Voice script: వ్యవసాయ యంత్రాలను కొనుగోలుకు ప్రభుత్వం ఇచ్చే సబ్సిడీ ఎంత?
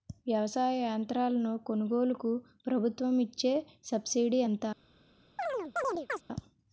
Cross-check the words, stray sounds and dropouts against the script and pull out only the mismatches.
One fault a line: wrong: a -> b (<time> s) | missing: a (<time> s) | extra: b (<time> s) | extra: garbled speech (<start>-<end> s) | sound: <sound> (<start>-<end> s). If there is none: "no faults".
sound: chirp (5.4-6.2 s)